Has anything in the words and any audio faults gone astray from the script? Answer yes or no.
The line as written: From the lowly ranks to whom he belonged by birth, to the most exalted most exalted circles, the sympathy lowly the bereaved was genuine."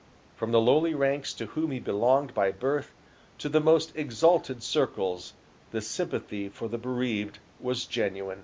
yes